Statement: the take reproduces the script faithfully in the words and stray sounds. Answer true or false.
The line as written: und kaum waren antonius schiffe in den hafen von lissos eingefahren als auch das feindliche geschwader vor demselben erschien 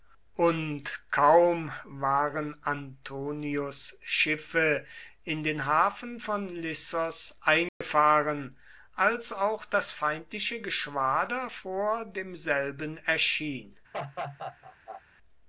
false